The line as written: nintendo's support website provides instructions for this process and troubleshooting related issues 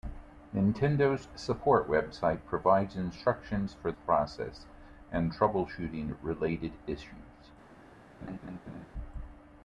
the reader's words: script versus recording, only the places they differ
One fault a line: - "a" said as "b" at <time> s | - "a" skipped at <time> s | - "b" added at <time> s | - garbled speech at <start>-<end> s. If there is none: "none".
- "this" skipped at 3.9 s